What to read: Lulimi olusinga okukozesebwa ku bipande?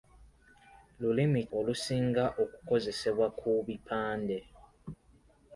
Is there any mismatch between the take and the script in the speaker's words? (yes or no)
no